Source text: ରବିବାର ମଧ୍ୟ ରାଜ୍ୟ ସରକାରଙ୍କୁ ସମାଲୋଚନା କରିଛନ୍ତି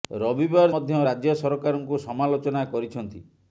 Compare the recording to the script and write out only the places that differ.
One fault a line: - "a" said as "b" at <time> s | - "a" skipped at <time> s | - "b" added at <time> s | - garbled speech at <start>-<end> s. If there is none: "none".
none